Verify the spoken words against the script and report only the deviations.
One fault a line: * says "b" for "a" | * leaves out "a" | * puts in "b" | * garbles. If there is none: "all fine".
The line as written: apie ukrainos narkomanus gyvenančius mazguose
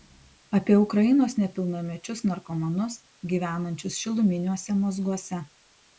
* puts in "nepilnamečius"
* puts in "šiluminiuose"